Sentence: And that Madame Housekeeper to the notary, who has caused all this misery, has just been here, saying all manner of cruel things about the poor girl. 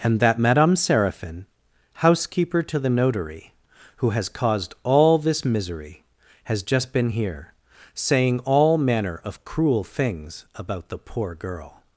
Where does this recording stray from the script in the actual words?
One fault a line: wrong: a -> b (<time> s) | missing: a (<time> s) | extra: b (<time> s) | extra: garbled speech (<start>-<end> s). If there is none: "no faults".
extra: Séraphin (0.8 s)